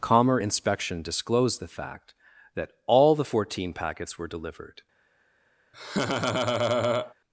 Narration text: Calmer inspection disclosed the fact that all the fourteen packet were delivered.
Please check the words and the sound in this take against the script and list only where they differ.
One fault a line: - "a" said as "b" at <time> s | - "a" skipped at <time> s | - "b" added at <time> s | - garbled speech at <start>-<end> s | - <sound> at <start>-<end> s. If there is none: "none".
- "packet" said as "packets" at 3.7 s
- laugh at 5.7-7.1 s